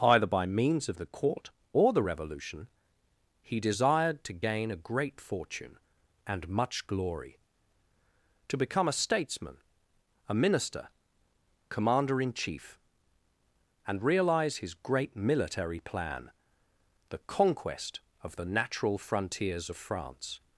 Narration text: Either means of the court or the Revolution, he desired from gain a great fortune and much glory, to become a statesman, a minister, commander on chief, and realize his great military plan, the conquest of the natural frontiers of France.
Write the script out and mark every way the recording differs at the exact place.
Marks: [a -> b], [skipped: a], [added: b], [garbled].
Either [added: by] means of the court or the Revolution, he desired [from -> to] gain a great fortune and much glory, to become a statesman, a minister, commander [on -> in] chief, and realize his great military plan, the conquest of the natural frontiers of France.